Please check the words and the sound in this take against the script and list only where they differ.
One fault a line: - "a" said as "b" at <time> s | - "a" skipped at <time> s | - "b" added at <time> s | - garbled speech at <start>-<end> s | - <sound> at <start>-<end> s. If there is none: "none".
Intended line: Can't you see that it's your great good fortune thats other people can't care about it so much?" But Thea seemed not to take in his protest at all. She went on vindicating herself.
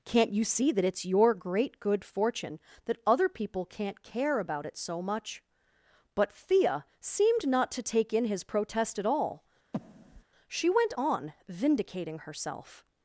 - "thats" said as "that" at 2.9 s
- breath at 9.7-10.2 s